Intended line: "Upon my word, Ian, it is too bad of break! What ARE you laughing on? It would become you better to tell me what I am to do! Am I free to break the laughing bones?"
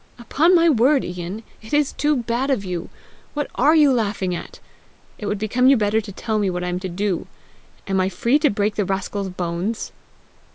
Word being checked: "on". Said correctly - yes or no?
no